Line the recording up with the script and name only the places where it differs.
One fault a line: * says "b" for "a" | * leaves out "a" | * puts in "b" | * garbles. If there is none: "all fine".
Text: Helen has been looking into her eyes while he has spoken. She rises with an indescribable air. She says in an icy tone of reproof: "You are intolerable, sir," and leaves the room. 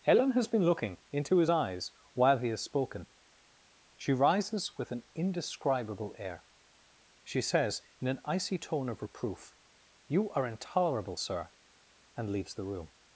* says "his" for "her"